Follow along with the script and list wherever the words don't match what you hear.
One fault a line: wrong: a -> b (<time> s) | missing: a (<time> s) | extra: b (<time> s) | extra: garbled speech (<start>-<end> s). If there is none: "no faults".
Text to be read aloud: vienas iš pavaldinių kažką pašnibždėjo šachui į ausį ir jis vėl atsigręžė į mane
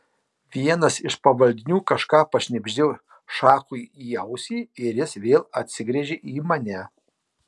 no faults